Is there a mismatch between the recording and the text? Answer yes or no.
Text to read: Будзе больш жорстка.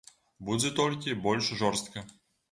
yes